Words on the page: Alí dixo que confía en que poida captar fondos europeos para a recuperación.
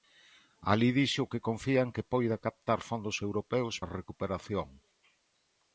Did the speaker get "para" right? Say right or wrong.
wrong